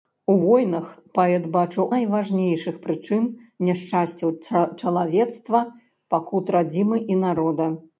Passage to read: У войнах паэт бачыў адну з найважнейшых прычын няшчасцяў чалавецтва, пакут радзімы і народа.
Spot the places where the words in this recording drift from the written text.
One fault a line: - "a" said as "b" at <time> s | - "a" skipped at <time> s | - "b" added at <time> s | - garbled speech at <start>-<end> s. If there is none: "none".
- "адну з" skipped at 1.9 s